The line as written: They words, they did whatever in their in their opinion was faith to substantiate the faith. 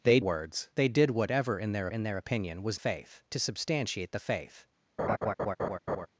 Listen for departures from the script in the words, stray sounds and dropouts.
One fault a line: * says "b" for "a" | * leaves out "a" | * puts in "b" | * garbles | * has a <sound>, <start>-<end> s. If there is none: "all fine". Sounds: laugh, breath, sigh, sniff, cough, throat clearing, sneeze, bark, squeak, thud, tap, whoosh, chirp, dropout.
* has a laugh, 5.0-6.1 s